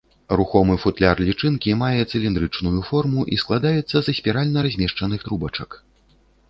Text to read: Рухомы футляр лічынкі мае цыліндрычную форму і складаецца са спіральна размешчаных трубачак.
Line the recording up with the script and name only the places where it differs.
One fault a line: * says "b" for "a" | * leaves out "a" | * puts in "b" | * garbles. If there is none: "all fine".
all fine